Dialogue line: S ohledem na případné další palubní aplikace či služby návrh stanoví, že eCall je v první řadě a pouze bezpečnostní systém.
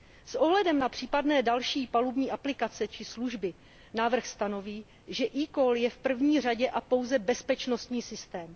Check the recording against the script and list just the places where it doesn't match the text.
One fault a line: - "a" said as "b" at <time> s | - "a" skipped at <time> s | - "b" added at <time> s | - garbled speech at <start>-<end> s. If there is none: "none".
none